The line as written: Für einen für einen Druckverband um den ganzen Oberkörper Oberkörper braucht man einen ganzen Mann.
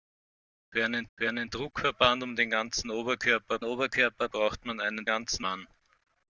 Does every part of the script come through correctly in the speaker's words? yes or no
yes